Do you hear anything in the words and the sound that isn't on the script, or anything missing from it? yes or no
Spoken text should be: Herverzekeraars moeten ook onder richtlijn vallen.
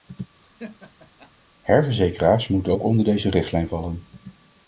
yes